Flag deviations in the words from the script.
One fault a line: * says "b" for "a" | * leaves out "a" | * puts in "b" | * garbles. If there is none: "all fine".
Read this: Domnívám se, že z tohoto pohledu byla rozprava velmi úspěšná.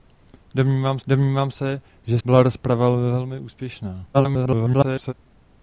* puts in "domnívám"
* leaves out "z tohoto pohledu"
* garbles